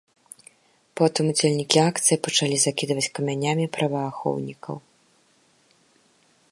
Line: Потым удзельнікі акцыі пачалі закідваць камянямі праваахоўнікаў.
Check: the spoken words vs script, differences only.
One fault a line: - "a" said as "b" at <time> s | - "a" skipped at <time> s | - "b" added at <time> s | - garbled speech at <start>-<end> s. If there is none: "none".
none